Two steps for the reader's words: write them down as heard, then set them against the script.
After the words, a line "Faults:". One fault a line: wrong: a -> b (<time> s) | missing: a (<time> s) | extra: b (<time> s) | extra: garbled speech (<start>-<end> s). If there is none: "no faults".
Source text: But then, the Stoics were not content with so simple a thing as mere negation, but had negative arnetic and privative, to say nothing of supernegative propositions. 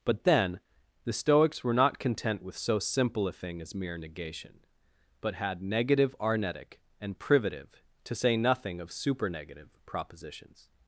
But then, the Stoics were not content with so simple a thing as mere negation, but had negative arnetic and privative, to say nothing of supernegative propositions.
Faults:
no faults